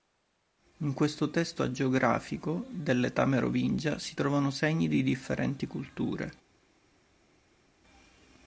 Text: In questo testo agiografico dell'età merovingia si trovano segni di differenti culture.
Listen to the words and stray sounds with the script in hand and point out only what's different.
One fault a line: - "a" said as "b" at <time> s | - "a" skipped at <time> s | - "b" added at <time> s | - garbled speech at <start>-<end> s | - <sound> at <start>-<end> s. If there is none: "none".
none